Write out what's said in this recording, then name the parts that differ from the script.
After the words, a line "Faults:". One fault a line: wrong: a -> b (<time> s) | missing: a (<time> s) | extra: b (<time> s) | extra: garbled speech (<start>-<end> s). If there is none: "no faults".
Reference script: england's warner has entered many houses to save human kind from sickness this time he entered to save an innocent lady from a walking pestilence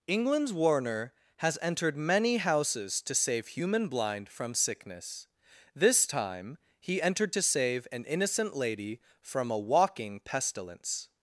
england's warner has entered many houses to save human blind from sickness this time he entered to save an innocent lady from a walking pestilence
Faults:
wrong: kind -> blind (3.9 s)